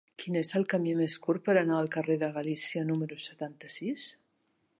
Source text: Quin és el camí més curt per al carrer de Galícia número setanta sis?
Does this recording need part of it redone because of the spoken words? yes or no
yes